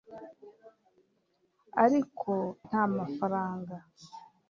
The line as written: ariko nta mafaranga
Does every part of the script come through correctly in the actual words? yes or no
yes